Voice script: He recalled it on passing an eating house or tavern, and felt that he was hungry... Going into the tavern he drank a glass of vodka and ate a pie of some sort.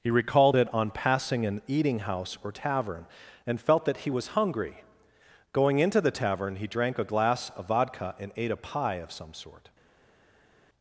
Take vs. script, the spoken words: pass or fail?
pass